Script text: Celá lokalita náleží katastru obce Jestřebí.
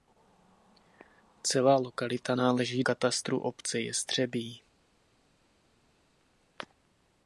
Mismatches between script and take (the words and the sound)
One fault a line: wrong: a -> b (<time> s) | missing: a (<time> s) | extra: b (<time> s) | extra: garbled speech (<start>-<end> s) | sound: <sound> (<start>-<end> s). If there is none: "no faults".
no faults